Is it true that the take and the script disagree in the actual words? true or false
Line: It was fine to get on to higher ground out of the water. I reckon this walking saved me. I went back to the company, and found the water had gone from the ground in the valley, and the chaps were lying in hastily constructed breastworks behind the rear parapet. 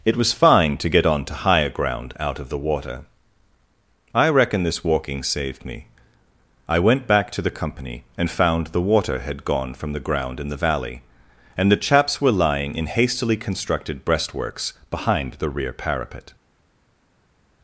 false